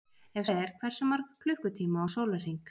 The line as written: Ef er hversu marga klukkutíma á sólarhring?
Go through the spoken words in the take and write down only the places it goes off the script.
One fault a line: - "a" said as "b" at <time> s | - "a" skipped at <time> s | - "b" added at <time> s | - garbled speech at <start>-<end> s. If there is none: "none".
none